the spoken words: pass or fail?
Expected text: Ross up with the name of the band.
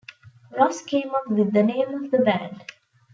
fail